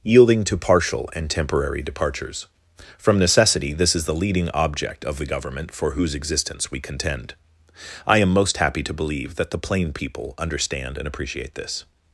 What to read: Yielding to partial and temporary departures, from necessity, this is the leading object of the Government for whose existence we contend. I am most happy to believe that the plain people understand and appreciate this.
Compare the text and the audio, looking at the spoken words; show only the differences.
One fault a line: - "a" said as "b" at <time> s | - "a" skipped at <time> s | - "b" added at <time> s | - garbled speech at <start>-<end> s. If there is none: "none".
none